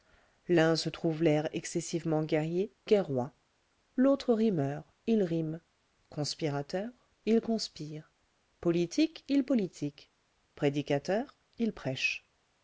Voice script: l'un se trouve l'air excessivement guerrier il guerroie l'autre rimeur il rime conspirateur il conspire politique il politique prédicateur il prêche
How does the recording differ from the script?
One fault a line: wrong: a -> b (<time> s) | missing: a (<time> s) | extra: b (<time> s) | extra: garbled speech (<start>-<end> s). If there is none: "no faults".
missing: il (2.7 s)